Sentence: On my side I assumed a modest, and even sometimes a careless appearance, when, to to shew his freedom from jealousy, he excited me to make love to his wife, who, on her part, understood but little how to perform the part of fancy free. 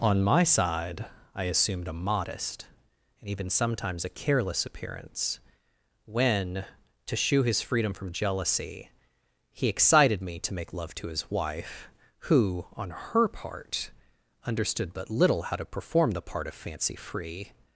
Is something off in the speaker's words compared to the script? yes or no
yes